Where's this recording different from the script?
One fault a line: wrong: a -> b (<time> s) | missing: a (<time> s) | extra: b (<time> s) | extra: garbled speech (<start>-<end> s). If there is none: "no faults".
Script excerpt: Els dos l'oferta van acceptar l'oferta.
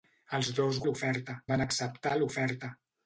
no faults